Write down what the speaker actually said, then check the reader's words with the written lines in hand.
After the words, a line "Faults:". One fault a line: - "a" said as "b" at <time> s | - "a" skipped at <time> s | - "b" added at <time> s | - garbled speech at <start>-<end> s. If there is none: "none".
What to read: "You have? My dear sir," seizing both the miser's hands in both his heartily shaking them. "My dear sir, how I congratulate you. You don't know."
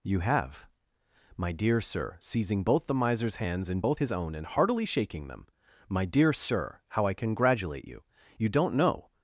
"You have? My dear sir," seizing both the miser's hands in both his own and heartily shaking them. "My dear sir, how I congratulate you. You don't know."
Faults:
- "own and" added at 4.1 s